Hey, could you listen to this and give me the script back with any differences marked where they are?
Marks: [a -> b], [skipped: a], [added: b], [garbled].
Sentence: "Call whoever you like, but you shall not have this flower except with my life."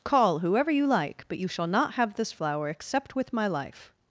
"Call whoever you like, but you shall not have this flower except with my life."